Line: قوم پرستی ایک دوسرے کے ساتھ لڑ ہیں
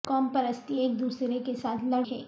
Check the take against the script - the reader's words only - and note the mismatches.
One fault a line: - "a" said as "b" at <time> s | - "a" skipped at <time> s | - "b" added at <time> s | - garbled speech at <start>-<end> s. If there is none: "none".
none